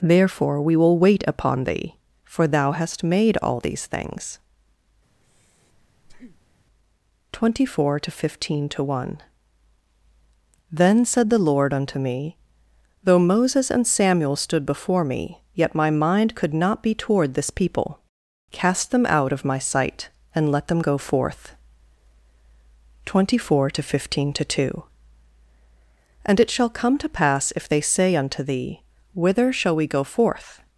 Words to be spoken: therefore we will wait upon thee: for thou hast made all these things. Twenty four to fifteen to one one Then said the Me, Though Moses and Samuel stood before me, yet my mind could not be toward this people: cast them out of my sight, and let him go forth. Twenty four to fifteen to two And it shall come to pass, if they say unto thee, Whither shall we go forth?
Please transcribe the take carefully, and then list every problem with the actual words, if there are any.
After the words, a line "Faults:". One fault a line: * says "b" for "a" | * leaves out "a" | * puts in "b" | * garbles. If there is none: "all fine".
therefore we will wait upon thee: for thou hast made all these things. Twenty four to fifteen to one Then said the LORD unto me, Though Moses and Samuel stood before me, yet my mind could not be toward this people: cast them out of my sight, and let them go forth. Twenty four to fifteen to two And it shall come to pass, if they say unto thee, Whither shall we go forth?
Faults:
* leaves out "one"
* puts in "LORD unto"
* says "them" for "him"